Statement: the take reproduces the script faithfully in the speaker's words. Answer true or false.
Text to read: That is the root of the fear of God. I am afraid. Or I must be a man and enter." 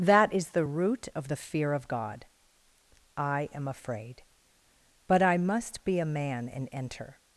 false